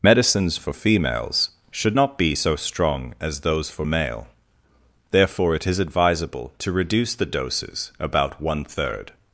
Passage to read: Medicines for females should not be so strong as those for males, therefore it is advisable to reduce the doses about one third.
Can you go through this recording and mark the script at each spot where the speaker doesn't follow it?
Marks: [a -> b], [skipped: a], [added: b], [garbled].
Medicines for females should not be so strong as those for [males, -> male] therefore it is advisable to reduce the doses about one third.